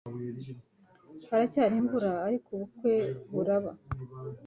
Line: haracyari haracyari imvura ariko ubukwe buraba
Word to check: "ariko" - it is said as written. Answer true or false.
true